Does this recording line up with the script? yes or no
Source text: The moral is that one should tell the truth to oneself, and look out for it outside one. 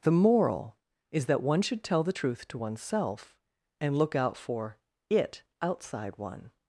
yes